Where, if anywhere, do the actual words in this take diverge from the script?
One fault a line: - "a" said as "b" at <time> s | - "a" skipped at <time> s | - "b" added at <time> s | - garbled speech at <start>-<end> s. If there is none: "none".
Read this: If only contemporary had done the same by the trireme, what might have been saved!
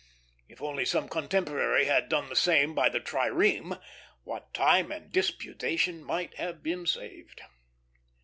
- "some" added at 0.8 s
- "time and disputation" added at 4.5 s